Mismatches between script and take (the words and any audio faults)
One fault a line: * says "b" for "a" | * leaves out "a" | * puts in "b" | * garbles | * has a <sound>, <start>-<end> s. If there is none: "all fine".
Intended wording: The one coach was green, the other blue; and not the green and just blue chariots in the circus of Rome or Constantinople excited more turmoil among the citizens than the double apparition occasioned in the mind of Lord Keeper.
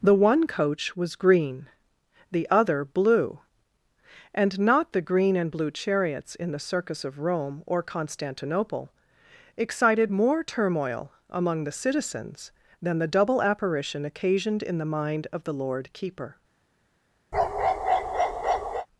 * leaves out "just"
* puts in "the"
* has a bark, 17.3-18.9 s